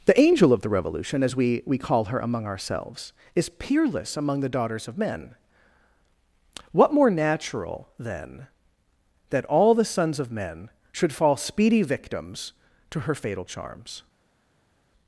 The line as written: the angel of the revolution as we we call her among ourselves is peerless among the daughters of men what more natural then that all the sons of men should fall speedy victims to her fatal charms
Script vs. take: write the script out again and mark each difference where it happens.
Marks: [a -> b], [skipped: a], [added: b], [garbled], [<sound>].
the angel of the revolution as we we call her among ourselves is peerless among the daughters of men what more natural then that all the sons of men should fall speedy victims to her fatal charms